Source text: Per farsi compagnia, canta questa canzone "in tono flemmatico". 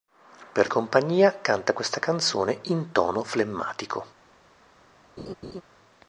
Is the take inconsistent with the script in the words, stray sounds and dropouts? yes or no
yes